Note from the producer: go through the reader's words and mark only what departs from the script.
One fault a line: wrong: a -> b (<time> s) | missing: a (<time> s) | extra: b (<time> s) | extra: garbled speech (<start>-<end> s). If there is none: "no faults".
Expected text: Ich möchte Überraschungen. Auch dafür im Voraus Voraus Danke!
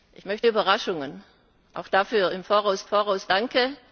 no faults